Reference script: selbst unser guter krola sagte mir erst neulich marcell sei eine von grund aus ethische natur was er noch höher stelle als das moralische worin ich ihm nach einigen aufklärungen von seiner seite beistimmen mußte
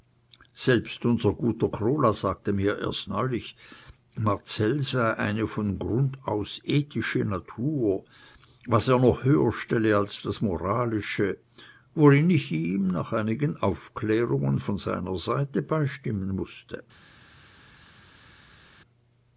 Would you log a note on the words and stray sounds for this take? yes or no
no